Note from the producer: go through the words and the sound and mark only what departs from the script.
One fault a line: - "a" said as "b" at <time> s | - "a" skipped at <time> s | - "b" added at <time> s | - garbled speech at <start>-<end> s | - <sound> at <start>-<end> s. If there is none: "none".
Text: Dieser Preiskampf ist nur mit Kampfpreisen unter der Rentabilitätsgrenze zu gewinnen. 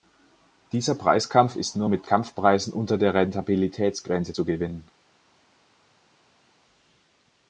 none